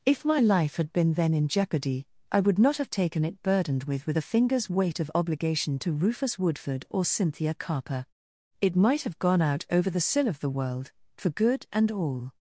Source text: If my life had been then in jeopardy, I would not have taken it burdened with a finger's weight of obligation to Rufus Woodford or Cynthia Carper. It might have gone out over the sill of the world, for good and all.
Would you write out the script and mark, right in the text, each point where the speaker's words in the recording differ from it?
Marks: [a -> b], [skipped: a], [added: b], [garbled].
If my life had been then in jeopardy, I would not have taken it burdened with [added: with] a finger's weight of obligation to Rufus Woodford or Cynthia Carper. It might have gone out over the sill of the world, for good and all.